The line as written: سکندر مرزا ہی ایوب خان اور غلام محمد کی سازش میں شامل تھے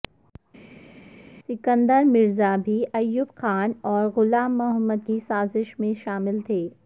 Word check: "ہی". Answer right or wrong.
wrong